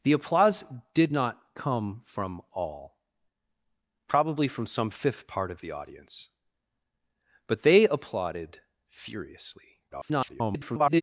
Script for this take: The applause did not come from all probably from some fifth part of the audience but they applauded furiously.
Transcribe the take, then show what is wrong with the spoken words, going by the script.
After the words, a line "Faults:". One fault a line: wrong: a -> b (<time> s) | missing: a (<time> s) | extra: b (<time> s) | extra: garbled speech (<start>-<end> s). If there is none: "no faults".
The applause did not come from all probably from some fifth part of the audience but they applauded furiously. [garbled]
Faults:
extra: garbled speech (9.9-11.0 s)